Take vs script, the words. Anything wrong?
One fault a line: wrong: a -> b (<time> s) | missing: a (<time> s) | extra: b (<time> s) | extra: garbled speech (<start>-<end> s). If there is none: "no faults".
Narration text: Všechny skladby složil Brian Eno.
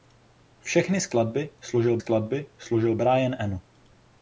extra: skladby složil (2.0 s)